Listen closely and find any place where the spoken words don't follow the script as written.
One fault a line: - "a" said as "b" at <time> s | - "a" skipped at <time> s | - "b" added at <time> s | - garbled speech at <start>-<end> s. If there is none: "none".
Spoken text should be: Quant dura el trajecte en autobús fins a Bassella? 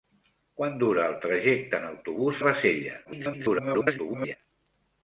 - "fins" skipped at 2.4 s
- garbled speech at 3.0-4.4 s